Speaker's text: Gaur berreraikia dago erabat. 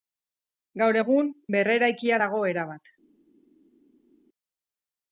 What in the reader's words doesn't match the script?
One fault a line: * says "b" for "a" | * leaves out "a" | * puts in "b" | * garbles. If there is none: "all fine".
* puts in "egun"